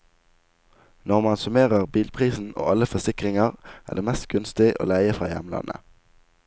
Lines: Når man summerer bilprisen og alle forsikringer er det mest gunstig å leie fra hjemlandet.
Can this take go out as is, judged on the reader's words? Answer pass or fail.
pass